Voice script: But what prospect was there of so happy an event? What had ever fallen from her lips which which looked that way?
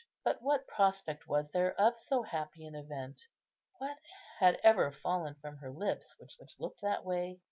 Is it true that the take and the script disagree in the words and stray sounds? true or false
false